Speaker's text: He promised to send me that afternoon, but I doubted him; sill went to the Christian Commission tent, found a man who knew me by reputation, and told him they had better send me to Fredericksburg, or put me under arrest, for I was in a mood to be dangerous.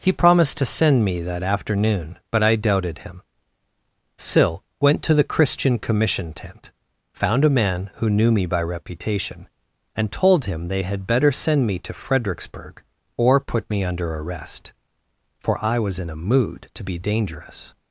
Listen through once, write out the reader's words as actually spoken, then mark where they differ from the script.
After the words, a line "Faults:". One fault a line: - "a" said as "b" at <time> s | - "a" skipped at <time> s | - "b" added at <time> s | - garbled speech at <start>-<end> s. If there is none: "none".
He promised to send me that afternoon, but I doubted him; sill went to the Christian Commission tent, found a man who knew me by reputation, and told him they had better send me to Fredericksburg, or put me under arrest, for I was in a mood to be dangerous.
Faults:
none